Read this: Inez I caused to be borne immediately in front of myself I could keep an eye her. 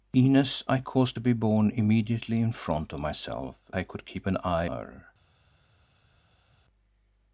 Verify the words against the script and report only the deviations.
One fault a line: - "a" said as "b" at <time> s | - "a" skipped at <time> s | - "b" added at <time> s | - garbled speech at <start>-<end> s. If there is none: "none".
none